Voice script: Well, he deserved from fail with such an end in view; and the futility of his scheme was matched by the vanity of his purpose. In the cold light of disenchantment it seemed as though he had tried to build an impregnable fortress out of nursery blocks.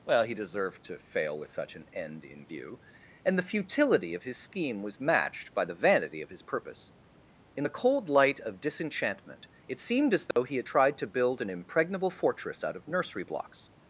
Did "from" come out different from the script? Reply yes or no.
yes